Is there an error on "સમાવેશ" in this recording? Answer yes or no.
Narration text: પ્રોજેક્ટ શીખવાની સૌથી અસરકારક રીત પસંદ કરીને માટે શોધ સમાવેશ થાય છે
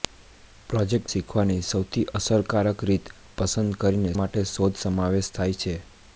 no